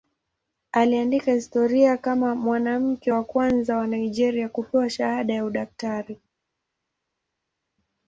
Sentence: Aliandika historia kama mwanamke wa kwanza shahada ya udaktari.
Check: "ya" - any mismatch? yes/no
no